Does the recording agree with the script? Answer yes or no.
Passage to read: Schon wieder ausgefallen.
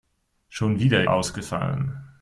yes